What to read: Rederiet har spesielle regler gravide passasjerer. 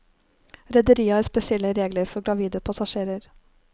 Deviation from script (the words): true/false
true